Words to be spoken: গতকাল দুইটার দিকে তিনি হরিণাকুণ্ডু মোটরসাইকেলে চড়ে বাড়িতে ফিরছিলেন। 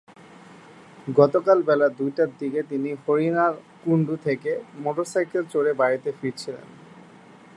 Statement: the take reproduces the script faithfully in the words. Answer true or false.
false